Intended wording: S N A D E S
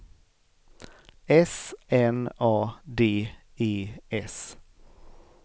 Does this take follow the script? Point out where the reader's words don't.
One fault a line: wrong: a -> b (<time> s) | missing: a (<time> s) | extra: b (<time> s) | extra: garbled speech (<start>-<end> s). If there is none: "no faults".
no faults